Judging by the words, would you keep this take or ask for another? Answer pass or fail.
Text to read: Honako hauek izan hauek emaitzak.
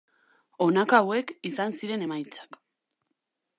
fail